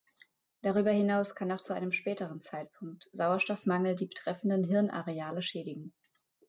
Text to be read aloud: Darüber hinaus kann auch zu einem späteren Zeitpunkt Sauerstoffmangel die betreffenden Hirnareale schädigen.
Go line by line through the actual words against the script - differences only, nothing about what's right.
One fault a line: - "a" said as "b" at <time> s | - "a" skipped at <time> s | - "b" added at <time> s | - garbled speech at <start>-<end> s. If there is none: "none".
none